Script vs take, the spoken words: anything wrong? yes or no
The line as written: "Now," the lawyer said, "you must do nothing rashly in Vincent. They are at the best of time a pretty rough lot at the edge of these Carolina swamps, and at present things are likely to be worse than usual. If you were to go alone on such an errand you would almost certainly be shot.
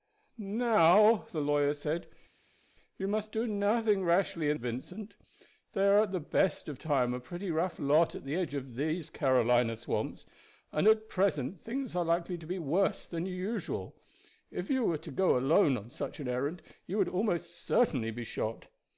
no